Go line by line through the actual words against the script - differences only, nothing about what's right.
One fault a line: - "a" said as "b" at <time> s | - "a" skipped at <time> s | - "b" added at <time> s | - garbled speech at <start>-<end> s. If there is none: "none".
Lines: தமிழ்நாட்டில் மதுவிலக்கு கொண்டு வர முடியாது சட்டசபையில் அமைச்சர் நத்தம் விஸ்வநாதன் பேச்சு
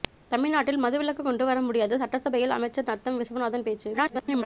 - garbled speech at 3.9-4.5 s